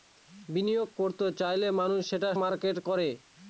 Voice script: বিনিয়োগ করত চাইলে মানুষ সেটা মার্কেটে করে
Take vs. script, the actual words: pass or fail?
pass